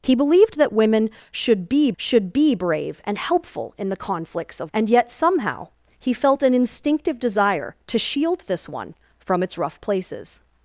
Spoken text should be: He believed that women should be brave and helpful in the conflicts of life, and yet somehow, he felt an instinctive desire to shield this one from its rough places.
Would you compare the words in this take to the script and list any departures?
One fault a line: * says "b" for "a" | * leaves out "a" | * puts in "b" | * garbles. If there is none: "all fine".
* puts in "should be"
* leaves out "life"